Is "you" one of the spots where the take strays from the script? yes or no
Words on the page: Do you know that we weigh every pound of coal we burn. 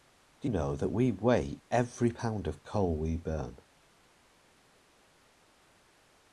yes